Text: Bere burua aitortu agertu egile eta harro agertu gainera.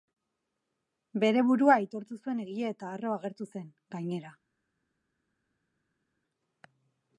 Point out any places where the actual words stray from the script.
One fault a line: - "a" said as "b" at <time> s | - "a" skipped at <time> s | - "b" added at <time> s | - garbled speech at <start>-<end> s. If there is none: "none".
- "agertu" said as "zuen" at 2.2 s
- "zen" added at 3.5 s